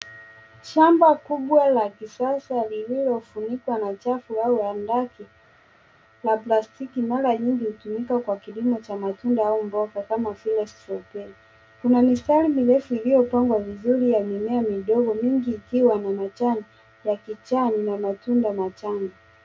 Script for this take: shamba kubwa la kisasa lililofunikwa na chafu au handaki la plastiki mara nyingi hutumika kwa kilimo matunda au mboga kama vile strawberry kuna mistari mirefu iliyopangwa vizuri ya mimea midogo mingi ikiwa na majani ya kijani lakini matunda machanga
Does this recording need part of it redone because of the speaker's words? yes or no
yes